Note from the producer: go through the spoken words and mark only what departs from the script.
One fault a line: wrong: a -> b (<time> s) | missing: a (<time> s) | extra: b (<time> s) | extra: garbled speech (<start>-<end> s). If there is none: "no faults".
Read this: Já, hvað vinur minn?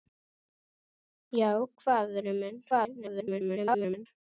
extra: garbled speech (2.7-4.1 s)